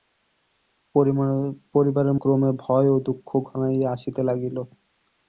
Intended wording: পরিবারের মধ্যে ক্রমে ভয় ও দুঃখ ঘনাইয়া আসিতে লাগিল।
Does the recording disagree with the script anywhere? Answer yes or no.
yes